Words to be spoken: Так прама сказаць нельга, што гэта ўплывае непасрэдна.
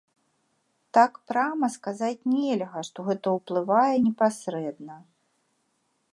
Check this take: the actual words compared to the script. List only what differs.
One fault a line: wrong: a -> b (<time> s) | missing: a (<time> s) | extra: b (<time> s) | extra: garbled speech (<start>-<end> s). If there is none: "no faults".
no faults